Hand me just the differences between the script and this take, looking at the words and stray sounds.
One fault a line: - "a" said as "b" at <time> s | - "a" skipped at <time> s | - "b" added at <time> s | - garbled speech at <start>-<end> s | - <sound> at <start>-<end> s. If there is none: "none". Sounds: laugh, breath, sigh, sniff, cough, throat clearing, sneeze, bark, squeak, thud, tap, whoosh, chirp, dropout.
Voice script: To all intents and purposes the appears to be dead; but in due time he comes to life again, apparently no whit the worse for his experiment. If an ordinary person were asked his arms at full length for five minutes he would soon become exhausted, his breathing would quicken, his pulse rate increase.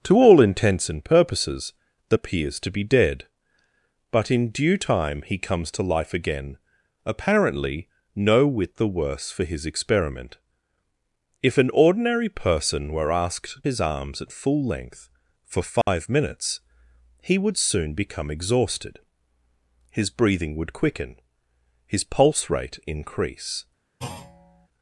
- dropout at 15.8-15.9 s
- thud at 24.0-24.7 s